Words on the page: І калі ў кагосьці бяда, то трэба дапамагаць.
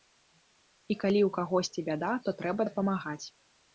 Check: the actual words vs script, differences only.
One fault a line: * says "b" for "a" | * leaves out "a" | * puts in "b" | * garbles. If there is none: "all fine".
all fine